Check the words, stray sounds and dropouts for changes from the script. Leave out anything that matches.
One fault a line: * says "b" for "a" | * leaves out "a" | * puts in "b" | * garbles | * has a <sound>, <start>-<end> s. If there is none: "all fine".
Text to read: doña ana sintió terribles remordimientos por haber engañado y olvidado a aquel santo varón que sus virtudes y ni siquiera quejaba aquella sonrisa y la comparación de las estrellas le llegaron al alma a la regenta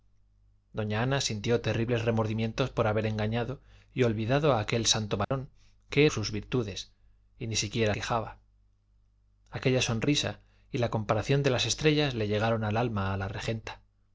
* has a dropout, 5.2-5.3 s